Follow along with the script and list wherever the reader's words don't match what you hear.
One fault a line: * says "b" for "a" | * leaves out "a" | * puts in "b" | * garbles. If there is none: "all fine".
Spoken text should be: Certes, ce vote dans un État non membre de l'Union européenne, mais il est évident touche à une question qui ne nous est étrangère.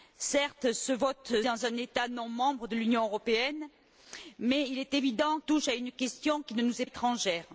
all fine